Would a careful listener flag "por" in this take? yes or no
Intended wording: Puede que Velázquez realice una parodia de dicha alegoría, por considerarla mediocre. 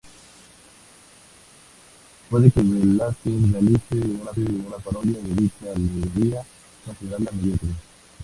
yes